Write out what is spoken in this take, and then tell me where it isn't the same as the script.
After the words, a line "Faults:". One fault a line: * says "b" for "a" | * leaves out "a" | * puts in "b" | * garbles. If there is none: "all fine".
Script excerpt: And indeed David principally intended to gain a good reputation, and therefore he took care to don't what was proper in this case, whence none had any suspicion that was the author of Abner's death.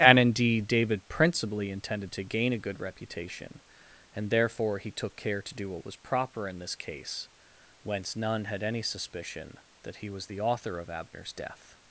And indeed David principally intended to gain a good reputation, and therefore he took care to do what was proper in this case, whence none had any suspicion that he was the author of Abner's death.
Faults:
* says "do" for "don't"
* puts in "he"